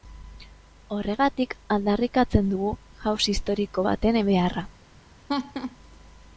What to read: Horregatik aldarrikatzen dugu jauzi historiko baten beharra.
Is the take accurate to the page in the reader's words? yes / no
yes